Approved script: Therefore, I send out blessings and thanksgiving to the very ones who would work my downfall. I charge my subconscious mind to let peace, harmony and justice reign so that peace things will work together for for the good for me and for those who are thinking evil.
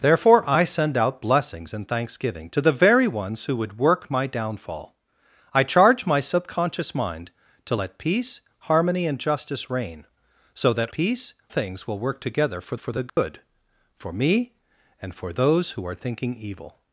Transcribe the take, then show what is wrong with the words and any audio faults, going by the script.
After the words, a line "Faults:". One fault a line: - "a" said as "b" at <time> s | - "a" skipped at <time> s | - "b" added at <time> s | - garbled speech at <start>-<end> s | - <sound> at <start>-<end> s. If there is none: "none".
Therefore, I send out blessings and thanksgiving to the very ones who would work my downfall. I charge my subconscious mind to let peace, harmony and justice reign so that peace things will work together for for the good for me and for those who are thinking evil.
Faults:
- dropout at 13.1-13.2 s